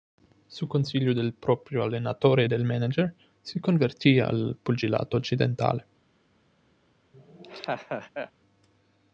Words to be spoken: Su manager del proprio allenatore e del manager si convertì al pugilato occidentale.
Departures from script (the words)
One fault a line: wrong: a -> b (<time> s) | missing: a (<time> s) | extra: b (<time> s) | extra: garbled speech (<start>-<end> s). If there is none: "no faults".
wrong: manager -> consiglio (0.7 s)